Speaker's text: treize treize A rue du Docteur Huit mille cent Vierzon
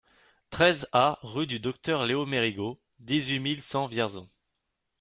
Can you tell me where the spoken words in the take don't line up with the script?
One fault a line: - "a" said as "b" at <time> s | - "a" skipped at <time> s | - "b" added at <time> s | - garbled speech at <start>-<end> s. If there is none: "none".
- "treize" skipped at 0.9 s
- "Léo Mérigot dix" added at 2.0 s